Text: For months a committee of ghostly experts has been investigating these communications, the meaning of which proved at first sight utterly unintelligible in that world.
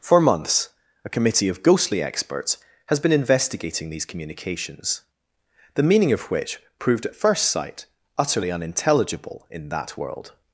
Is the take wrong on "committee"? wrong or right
right